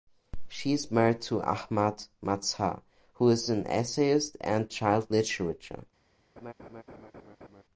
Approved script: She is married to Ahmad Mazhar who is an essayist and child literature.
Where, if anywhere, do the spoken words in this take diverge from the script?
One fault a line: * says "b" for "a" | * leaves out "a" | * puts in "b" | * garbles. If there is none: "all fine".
all fine